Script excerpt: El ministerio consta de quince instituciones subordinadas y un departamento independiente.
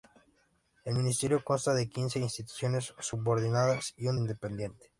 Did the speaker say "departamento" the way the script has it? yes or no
no